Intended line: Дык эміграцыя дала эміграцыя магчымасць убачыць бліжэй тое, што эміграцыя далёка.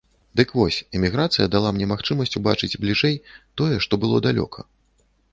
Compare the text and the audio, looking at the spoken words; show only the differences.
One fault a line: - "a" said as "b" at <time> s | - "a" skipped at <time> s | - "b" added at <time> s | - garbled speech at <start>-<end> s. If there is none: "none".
- "вось" added at 0.6 s
- "эміграцыя" said as "мне" at 1.8 s
- "эміграцыя" said as "было" at 4.0 s